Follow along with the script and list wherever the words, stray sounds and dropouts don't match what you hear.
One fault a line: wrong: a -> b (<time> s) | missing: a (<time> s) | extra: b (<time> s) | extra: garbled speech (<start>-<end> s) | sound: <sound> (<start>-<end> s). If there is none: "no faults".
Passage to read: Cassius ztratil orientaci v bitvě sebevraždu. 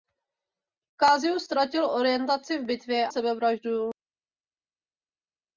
no faults